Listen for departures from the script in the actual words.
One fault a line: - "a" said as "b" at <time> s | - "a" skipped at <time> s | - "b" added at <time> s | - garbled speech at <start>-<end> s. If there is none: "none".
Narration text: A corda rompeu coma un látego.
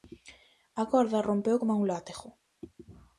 none